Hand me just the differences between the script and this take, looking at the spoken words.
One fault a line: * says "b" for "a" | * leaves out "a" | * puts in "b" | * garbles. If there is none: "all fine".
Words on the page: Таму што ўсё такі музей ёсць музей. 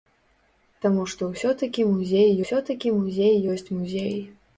* puts in "ўсё такі музей"